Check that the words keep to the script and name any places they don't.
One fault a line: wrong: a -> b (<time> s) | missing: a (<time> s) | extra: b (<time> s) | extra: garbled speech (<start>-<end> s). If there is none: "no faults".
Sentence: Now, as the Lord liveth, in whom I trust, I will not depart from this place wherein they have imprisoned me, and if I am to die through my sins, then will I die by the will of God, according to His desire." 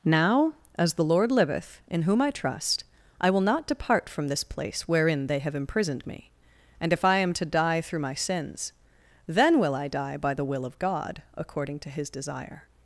no faults